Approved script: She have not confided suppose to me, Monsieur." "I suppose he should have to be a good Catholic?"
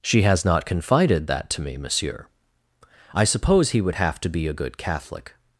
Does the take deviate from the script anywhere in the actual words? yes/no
yes